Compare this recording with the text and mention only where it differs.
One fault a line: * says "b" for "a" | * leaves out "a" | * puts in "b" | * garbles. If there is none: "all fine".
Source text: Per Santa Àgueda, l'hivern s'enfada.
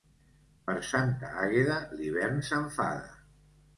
all fine